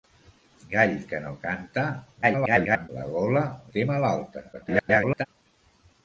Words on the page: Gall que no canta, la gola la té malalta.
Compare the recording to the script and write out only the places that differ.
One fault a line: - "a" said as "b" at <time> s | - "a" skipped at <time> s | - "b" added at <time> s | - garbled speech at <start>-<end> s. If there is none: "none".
- garbled speech at 2.2-2.9 s
- "la" skipped at 3.5 s
- garbled speech at 4.5-5.3 s